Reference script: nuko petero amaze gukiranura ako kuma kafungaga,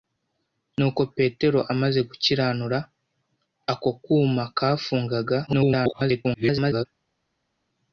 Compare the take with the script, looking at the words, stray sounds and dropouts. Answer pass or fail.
fail